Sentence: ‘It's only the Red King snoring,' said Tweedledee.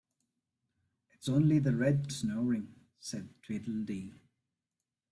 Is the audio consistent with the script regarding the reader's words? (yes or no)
no